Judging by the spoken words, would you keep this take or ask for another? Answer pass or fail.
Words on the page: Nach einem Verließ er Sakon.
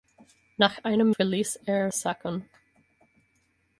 pass